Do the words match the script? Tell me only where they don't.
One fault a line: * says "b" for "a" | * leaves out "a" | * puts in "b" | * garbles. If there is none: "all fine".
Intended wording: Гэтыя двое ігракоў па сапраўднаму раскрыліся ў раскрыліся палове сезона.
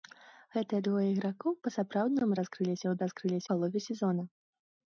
all fine